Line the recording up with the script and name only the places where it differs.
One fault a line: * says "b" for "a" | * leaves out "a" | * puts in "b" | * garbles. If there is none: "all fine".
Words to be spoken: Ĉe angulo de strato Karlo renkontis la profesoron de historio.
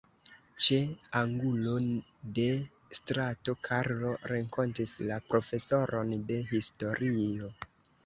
all fine